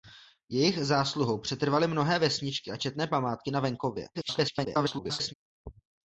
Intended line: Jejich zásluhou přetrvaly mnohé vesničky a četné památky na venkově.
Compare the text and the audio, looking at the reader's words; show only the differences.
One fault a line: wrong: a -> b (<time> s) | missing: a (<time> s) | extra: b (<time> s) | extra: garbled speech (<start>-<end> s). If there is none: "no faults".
extra: garbled speech (4.1-5.3 s)